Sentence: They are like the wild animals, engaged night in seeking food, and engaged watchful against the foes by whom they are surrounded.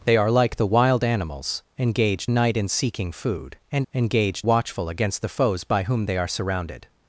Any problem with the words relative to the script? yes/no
no